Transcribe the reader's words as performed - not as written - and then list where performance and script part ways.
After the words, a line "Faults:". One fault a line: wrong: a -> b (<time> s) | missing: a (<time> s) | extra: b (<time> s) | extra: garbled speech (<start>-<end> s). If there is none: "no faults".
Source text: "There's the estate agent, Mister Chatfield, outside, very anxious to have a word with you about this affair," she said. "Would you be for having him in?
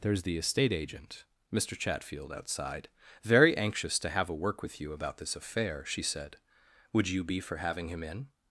"There's the estate agent, Mister Chatfield, outside, very anxious to have a work with you about this affair," she said. "Would you be for having him in?
Faults:
wrong: word -> work (4.3 s)